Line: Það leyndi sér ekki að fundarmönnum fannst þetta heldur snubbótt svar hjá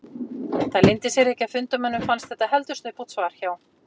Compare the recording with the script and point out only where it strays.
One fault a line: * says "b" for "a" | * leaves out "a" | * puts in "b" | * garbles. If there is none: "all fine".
all fine